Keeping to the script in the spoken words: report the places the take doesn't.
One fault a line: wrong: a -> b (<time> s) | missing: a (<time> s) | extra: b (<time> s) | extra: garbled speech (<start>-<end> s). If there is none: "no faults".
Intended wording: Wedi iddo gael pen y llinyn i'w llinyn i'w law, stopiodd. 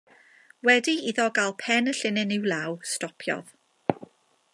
missing: llinyn i'w (2.5 s)